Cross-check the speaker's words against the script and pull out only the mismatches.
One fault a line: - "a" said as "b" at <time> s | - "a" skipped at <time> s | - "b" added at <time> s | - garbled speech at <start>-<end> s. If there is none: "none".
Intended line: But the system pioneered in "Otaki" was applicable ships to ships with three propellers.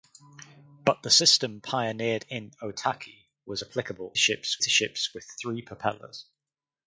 none